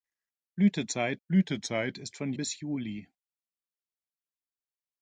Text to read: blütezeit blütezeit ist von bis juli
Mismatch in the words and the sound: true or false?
false